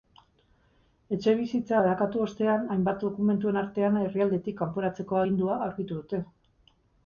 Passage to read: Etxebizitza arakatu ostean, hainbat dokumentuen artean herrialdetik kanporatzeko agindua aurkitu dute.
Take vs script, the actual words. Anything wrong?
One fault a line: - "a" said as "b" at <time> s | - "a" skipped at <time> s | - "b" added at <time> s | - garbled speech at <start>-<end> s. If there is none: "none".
none